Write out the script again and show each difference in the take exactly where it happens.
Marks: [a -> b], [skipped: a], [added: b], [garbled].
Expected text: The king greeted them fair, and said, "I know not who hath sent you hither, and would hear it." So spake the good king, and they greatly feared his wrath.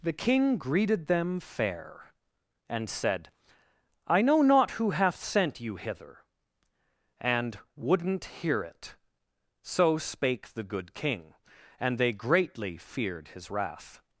The king greeted them fair, and said, "I know not who hath sent you hither, and [would -> wouldn't] hear it." So spake the good king, and they greatly feared his wrath.